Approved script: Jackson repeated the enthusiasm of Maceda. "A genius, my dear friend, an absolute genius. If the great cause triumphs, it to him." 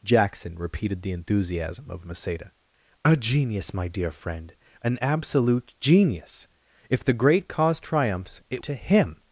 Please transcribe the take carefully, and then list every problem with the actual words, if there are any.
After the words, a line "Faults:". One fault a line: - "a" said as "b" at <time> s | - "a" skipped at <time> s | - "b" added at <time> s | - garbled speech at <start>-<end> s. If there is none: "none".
Jackson repeated the enthusiasm of Maceda. "A genius, my dear friend, an absolute genius. If the great cause triumphs, it to him."
Faults:
none